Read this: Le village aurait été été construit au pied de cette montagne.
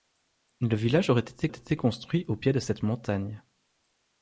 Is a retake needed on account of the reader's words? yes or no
no